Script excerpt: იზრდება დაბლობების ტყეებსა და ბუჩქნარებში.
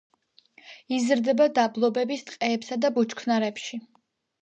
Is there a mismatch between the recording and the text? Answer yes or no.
no